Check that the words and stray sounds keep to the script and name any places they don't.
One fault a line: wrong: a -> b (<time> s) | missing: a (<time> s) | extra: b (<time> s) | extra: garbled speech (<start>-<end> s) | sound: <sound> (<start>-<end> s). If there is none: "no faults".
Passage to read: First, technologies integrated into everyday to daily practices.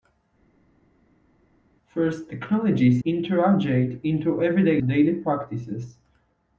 no faults